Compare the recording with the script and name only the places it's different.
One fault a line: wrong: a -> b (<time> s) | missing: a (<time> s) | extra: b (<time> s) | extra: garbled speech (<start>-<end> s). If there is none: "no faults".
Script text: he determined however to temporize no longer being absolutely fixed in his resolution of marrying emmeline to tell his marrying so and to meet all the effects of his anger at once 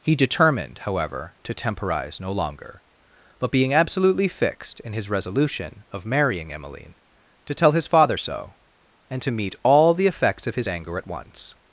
extra: but (3.4 s)
wrong: marrying -> father (7.9 s)